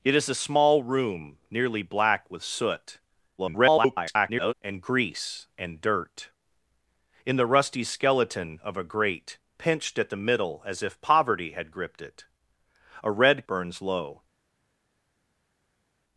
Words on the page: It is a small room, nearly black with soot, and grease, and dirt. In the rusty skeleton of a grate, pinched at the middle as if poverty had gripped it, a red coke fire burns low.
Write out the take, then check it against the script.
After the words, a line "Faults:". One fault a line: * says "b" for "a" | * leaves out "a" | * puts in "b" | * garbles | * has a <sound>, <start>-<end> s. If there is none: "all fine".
It is a small room, nearly black with soot, [garbled] and grease, and dirt. In the rusty skeleton of a grate, pinched at the middle as if poverty had gripped it, a red burns low.
Faults:
* garbles
* leaves out "coke fire"